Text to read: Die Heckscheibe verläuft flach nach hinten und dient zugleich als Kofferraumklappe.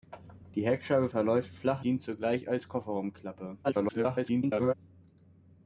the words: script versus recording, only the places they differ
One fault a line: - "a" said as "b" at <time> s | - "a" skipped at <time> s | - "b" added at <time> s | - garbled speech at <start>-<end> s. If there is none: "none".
- "nach hinten und" skipped at 1.8 s
- garbled speech at 3.6-4.7 s